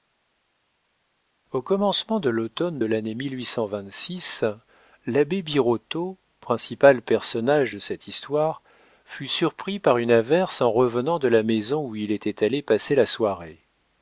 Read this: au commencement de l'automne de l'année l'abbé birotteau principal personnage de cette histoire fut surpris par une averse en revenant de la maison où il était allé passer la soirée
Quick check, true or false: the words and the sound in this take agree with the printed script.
true